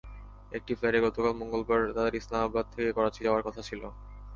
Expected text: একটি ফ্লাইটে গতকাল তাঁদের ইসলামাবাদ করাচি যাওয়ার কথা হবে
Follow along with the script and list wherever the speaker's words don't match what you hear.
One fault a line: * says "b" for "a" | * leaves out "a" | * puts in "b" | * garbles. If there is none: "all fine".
* puts in "মঙ্গলবার"
* puts in "থেকে"
* says "ছিল" for "হবে"